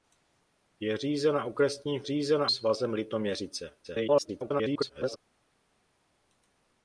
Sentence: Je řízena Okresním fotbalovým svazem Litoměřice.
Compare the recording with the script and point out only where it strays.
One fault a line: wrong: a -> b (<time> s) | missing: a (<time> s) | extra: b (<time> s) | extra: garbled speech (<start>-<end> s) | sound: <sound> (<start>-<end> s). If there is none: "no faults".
wrong: fotbalovým -> řízena (2.0 s)
extra: garbled speech (3.8-5.2 s)